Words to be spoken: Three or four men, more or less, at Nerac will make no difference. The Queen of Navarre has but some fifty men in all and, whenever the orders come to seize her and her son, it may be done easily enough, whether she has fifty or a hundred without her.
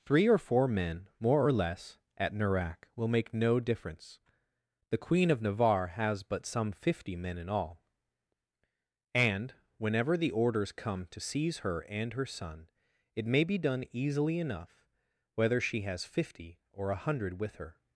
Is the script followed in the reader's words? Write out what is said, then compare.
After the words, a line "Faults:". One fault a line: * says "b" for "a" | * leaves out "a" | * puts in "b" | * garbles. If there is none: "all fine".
Three or four men, more or less, at Nerac will make no difference. The Queen of Navarre has but some fifty men in all and, whenever the orders come to seize her and her son, it may be done easily enough, whether she has fifty or a hundred with her.
Faults:
* says "with" for "without"